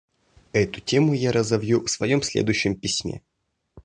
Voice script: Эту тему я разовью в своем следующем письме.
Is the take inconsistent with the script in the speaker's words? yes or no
no